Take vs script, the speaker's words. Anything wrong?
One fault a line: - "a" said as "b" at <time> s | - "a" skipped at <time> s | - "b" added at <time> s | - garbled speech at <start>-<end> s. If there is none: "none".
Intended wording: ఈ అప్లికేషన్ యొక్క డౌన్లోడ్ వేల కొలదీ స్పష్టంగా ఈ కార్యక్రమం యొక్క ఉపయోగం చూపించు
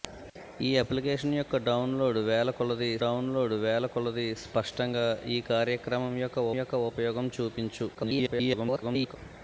- "డౌన్లోడ్ వేల కొలదీ" added at 3.0 s
- "యొక్క" added at 6.6 s
- garbled speech at 7.9-9.2 s